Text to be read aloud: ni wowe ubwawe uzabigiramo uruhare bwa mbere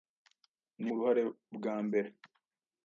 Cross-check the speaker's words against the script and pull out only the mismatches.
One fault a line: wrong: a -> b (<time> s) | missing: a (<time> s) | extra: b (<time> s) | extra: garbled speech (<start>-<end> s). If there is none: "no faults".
missing: wowe ubwawe uzabigiramo (0.9 s)